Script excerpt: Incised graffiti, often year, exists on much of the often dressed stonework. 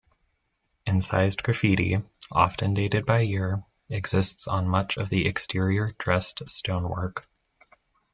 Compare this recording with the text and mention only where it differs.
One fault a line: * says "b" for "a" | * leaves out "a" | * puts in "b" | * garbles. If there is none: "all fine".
* puts in "dated by"
* says "exterior" for "often"